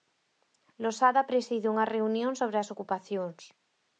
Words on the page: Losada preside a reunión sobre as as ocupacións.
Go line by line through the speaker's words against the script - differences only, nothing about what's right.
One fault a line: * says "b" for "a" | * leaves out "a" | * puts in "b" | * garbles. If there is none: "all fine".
* says "unha" for "a"
* leaves out "as"